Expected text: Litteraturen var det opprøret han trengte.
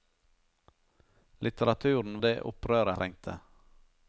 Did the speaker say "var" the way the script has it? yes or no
no